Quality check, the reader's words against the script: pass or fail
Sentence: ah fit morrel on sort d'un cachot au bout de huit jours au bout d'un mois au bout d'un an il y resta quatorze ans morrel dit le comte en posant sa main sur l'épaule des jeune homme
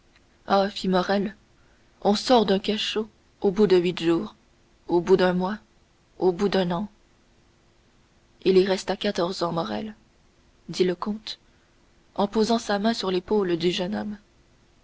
fail